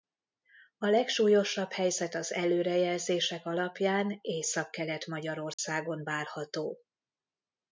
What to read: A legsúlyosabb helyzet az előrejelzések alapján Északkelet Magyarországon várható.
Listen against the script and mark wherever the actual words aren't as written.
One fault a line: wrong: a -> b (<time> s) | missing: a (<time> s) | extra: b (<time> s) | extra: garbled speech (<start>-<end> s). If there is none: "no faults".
no faults